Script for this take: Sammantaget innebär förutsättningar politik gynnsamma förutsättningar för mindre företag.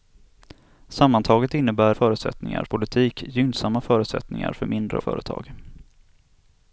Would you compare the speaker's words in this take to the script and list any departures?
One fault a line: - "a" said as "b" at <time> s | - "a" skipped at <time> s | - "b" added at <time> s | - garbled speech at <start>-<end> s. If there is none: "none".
none